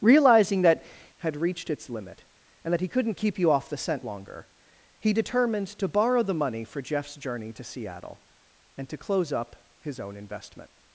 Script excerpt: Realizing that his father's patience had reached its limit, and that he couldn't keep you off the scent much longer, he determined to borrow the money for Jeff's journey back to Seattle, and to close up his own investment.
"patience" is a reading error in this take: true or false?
true